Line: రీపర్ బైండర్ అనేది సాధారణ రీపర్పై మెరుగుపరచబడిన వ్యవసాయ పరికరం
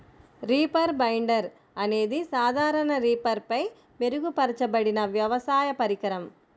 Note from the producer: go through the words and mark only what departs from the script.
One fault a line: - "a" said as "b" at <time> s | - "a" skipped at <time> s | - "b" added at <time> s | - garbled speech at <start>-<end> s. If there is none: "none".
none